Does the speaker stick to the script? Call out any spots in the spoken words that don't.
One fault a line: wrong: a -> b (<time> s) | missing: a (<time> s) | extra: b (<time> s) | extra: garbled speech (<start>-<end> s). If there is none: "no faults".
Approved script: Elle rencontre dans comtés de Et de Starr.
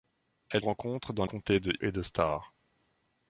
no faults